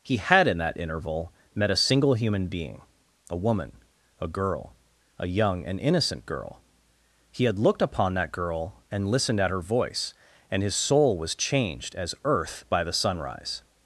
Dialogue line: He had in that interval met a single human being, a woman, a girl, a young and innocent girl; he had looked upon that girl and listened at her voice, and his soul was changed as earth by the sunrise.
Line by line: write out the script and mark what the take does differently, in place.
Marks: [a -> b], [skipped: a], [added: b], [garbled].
He had in that interval met a single human being, a woman, a girl, a young and innocent girl; he had looked upon that girl and listened at her voice, and his soul was changed as earth by the sunrise.